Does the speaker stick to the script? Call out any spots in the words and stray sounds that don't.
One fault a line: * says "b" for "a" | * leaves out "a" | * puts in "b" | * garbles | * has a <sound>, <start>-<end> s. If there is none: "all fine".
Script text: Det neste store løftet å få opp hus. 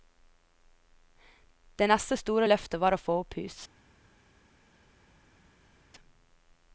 * puts in "var"